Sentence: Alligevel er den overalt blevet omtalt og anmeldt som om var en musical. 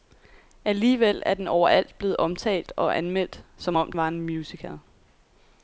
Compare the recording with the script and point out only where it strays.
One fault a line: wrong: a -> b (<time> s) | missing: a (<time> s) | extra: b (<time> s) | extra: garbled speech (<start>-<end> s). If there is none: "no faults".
no faults